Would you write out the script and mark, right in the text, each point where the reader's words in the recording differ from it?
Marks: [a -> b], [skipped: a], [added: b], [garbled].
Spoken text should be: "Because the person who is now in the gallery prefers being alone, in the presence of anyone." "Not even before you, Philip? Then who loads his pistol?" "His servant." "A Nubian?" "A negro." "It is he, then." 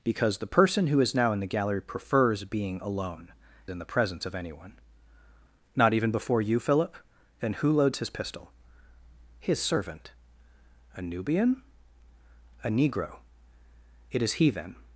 "Because the person who is now in the gallery prefers being alone, in the presence of anyone." "Not even before you, Philip? Then who loads his pistol?" "His servant." "A Nubian?" "A negro." "It is he, then."